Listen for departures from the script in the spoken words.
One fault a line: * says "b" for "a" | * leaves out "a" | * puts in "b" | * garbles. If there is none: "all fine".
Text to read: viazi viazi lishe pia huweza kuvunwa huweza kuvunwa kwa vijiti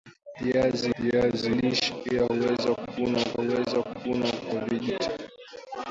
all fine